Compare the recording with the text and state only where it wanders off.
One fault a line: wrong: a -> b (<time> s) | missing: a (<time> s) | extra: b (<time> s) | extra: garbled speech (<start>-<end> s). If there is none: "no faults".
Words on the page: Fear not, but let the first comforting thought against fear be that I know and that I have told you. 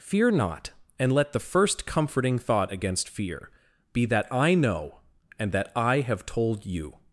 wrong: but -> and (1.0 s)